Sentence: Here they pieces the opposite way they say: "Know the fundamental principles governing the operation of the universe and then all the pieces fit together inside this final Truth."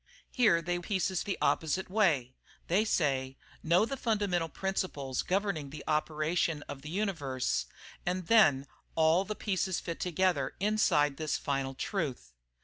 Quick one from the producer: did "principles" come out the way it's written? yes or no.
yes